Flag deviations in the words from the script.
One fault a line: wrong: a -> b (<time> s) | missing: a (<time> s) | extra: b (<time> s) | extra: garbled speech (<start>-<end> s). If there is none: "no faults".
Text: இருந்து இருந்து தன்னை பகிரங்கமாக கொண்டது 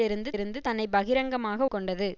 no faults